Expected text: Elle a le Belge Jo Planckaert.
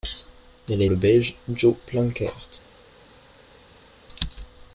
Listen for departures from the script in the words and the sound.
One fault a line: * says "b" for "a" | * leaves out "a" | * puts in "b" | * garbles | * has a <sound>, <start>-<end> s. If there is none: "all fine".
all fine